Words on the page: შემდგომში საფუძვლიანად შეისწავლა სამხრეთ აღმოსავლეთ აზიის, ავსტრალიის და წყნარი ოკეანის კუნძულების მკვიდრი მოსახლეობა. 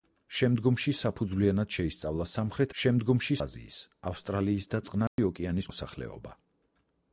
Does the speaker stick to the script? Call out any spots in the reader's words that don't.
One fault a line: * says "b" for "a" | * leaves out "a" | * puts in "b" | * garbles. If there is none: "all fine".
* says "შემდგომში" for "აღმოსავლეთ"
* leaves out "კუნძულების მკვიდრი"